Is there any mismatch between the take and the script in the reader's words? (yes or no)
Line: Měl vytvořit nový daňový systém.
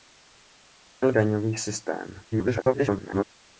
yes